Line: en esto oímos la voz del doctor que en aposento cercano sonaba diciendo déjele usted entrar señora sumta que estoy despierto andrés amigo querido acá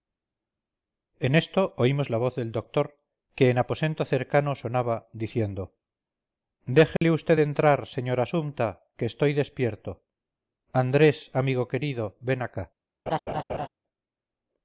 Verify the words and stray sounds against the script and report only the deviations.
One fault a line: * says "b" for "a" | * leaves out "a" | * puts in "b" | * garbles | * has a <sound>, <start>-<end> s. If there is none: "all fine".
* has a dropout, 7.0-7.0 s
* puts in "ven"
* has a laugh, 13.1-13.7 s